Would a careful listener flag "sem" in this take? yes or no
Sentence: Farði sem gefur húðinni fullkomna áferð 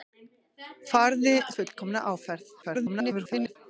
yes